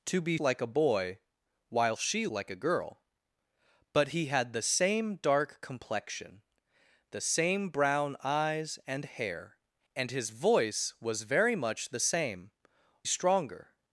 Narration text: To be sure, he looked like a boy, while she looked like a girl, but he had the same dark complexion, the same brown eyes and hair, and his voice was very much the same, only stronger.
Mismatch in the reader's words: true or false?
true